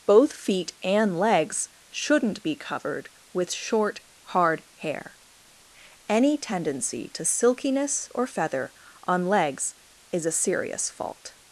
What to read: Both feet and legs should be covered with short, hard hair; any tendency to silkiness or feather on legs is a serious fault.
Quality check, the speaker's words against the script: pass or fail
fail